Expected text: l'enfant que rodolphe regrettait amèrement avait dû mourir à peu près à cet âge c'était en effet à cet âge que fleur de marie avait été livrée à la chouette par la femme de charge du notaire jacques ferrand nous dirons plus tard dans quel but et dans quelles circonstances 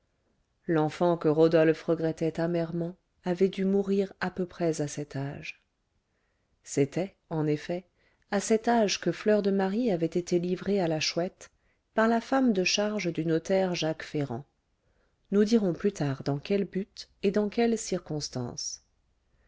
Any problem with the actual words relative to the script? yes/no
no